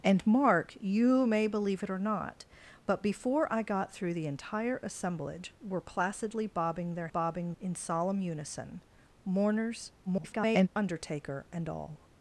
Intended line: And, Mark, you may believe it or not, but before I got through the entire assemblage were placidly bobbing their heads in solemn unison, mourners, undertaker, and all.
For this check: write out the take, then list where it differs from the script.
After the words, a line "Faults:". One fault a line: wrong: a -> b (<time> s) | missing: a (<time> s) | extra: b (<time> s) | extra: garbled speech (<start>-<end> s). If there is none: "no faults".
And, Mark, you may believe it or not, but before I got through the entire assemblage were placidly bobbing their bobbing in solemn unison, mourners, [garbled] undertaker, and all.
Faults:
wrong: heads -> bobbing (7.1 s)
extra: garbled speech (10.1-10.7 s)